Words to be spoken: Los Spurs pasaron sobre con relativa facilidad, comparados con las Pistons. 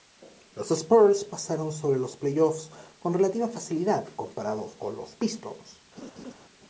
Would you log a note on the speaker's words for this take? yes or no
yes